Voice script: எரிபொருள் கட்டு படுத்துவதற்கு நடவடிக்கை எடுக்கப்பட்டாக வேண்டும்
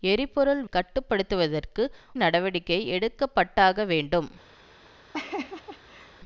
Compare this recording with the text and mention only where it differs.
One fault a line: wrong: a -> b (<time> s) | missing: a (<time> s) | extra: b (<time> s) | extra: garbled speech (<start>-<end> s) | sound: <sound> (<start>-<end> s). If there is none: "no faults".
sound: laugh (5.1-6.2 s)